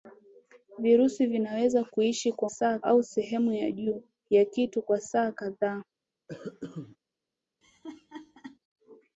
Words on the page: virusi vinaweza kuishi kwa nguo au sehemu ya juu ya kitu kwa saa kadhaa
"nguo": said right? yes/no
no